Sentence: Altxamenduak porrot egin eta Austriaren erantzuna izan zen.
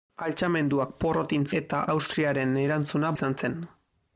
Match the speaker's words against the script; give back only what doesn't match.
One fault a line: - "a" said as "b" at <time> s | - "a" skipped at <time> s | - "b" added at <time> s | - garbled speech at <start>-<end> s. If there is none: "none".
none